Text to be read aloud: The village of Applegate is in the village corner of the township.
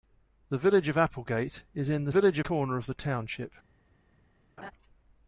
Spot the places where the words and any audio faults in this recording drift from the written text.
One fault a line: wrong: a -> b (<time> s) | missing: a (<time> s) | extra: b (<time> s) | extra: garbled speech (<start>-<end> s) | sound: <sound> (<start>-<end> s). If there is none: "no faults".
sound: laugh (4.6-4.7 s)